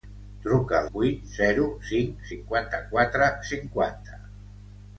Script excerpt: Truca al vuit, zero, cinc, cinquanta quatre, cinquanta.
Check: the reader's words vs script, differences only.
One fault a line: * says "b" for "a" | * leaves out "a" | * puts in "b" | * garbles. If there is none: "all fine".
all fine